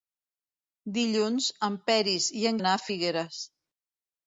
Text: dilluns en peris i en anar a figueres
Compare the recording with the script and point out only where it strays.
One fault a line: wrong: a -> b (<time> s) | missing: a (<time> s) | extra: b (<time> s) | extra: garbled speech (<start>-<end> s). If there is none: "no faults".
no faults